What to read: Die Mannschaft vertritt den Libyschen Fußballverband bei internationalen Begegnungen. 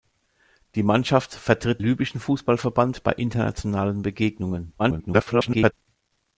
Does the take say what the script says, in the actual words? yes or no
no